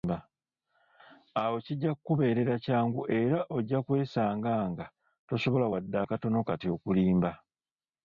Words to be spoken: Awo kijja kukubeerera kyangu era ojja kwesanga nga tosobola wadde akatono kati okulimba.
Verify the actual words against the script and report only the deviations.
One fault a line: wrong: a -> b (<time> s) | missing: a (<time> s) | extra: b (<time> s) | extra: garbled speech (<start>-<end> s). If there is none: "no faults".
no faults